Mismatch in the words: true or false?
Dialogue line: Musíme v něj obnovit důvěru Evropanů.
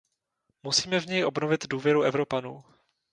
false